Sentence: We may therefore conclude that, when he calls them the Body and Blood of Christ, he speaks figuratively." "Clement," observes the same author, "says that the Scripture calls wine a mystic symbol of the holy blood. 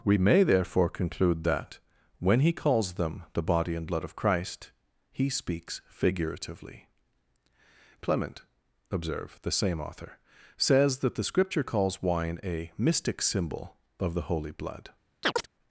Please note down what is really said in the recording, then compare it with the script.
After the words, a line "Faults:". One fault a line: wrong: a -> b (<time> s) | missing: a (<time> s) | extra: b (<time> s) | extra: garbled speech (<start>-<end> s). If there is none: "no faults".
We may therefore conclude that, when he calls them the Body and Blood of Christ, he speaks figuratively." "Clement," observe the same author, "says that the Scripture calls wine a mystic symbol of the holy blood.
Faults:
wrong: observes -> observe (8.9 s)